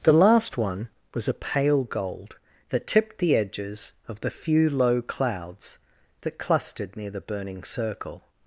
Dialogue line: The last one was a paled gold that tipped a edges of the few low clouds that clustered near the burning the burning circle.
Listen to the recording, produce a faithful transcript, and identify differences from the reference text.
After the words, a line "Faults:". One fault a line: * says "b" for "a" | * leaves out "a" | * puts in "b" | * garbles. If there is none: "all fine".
The last one was a pale gold that tipped the edges of the few low clouds that clustered near the burning circle.
Faults:
* says "pale" for "paled"
* says "the" for "a"
* leaves out "the burning"